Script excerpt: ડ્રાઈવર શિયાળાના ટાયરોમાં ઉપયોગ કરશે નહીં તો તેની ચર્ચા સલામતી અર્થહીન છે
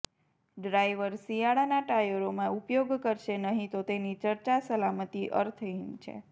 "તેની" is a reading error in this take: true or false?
false